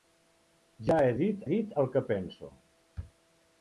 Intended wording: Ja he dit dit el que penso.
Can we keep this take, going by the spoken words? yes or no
yes